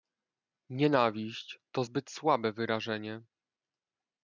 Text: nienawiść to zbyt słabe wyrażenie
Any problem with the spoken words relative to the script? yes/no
no